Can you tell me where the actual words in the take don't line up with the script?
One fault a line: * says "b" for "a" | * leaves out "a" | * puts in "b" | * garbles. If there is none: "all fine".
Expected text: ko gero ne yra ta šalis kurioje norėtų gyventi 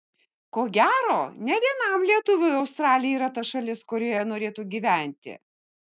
* puts in "vienam lietuviui australija"